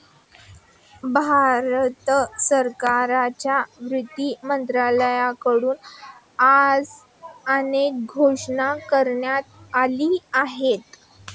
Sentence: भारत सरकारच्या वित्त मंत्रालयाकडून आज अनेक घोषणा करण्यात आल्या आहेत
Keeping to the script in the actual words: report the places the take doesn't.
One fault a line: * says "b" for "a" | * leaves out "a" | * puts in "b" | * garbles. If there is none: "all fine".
all fine